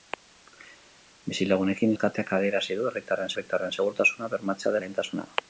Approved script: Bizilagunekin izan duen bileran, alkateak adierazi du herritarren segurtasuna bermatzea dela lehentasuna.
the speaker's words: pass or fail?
fail